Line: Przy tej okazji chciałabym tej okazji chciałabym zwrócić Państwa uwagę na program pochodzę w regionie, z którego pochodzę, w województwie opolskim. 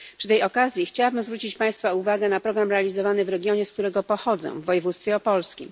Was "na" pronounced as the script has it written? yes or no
yes